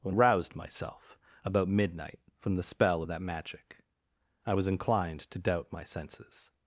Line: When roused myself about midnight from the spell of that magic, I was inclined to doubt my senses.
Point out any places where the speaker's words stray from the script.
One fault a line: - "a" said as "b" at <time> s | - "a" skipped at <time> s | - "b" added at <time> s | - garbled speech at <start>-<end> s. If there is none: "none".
none